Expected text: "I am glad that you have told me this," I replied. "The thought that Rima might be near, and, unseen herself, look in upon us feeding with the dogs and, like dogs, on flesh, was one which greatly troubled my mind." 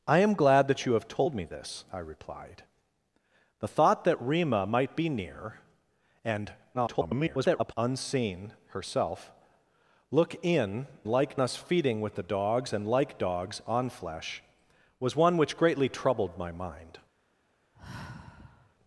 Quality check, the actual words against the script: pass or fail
fail